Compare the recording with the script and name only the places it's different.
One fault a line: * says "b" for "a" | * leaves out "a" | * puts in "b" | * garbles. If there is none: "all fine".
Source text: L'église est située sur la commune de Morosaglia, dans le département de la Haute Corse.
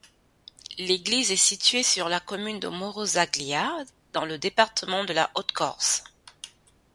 all fine